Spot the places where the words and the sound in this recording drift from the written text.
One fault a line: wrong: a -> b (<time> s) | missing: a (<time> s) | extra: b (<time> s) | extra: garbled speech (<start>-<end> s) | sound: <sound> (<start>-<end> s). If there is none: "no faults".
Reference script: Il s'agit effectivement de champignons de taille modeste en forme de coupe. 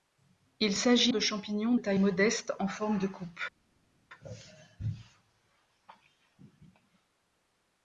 missing: effectivement (1.1 s)
missing: de (1.7 s)